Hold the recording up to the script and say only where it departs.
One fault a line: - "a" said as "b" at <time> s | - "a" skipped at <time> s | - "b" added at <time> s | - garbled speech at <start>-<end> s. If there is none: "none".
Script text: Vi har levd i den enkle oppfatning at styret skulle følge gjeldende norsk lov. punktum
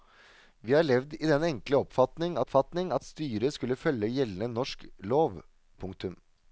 - "oppfatning" added at 2.4 s